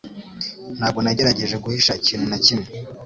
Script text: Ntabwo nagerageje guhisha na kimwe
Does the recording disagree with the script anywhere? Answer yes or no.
yes